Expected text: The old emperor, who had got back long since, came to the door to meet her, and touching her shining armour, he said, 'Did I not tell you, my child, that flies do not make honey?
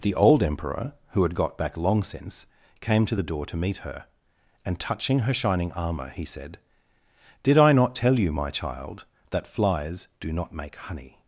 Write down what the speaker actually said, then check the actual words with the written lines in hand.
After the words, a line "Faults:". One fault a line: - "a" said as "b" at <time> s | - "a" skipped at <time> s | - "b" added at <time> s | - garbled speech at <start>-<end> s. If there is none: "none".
The old emperor, who had got back long since, came to the door to meet her, and touching her shining armour, he said, 'Did I not tell you, my child, that flies do not make honey?
Faults:
none